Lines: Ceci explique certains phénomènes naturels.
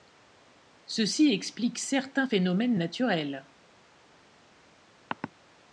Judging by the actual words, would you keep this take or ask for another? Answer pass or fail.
pass